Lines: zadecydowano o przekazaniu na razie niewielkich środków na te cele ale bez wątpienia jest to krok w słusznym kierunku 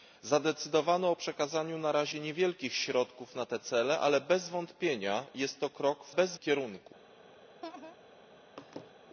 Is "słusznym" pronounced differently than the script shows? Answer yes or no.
yes